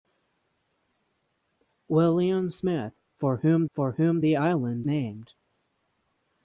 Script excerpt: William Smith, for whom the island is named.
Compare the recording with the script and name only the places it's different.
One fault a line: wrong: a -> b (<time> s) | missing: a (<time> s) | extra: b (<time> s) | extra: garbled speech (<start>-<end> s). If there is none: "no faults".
extra: for whom (3.7 s)
missing: is (4.9 s)